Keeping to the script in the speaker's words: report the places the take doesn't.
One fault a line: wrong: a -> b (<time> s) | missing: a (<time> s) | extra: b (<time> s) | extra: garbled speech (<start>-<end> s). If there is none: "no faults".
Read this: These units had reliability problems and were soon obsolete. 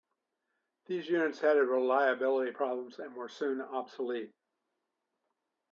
no faults